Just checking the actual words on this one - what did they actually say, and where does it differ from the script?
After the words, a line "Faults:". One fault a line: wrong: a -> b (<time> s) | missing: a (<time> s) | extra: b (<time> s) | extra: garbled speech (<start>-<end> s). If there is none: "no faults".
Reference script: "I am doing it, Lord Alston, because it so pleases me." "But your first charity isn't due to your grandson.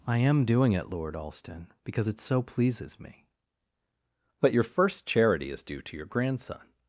"I am doing it, Lord Alston, because it so pleases me." "But your first charity is due to your grandson.
Faults:
wrong: isn't -> is (5.5 s)